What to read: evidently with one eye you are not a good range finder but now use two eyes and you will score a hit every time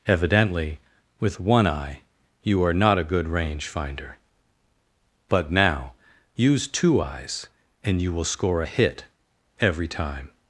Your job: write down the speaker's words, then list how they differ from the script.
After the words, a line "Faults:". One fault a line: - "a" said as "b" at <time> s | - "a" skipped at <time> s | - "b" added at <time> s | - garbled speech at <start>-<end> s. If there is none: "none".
evidently with one eye you are not a good range finder but now use two eyes and you will score a hit every time
Faults:
none